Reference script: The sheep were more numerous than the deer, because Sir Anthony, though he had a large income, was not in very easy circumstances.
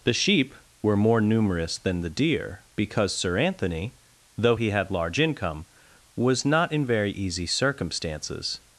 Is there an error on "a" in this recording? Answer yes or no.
yes